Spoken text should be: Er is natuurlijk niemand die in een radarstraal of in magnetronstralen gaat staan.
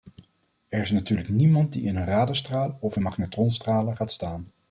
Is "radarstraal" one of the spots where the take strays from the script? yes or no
no